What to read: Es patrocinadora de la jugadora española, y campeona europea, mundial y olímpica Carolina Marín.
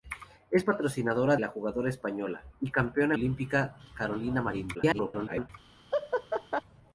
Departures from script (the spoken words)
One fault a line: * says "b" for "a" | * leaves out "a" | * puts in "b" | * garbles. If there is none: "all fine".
* leaves out "de"
* leaves out "europea mundial y"
* garbles